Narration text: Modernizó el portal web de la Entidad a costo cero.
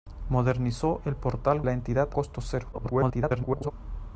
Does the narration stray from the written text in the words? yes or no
yes